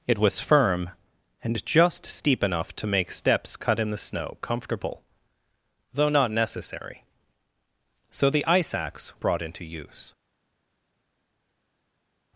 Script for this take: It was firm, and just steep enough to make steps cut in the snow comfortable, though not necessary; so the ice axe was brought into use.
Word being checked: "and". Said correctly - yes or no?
yes